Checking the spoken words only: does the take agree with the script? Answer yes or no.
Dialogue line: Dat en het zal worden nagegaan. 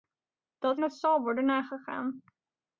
yes